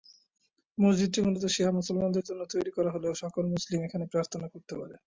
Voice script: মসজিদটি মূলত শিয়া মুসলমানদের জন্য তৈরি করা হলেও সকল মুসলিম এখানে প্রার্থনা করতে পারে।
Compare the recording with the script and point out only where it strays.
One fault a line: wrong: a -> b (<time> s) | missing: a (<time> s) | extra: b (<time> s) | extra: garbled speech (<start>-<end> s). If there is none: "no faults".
no faults